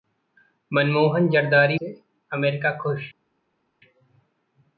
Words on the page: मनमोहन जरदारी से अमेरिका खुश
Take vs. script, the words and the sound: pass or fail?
pass